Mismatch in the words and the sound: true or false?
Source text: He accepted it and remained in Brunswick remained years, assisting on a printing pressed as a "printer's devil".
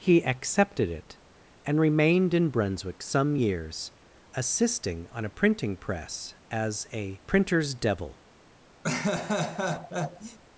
true